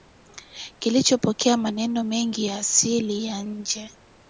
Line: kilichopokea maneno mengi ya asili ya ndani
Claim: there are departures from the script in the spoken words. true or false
true